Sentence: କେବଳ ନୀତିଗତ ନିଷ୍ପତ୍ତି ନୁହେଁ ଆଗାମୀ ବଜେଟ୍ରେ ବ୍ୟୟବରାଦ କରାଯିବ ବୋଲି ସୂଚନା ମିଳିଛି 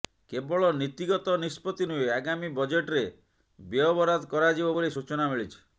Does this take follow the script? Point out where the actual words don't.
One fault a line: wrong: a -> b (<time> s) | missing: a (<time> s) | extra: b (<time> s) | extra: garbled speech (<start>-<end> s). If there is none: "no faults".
no faults